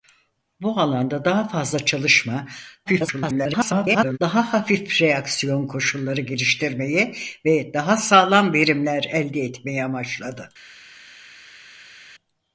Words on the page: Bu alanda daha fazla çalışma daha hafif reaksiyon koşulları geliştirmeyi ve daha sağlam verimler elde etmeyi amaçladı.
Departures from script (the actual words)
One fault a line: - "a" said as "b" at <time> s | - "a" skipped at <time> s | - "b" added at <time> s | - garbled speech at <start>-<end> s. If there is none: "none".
- garbled speech at 2.9-4.2 s